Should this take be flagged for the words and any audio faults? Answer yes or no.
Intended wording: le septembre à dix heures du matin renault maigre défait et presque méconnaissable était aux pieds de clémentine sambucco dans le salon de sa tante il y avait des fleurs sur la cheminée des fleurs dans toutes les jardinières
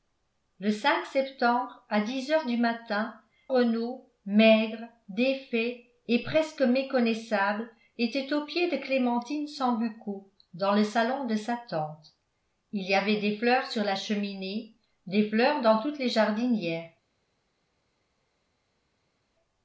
no